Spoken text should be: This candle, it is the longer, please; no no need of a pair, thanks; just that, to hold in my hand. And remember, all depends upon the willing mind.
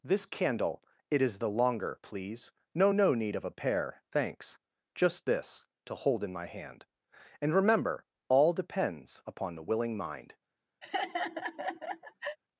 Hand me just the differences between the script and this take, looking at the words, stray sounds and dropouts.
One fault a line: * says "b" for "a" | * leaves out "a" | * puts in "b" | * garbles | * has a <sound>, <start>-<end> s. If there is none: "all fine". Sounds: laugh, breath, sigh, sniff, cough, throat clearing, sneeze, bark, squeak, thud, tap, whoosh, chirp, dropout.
* says "this" for "that"
* has a laugh, 10.8-12.4 s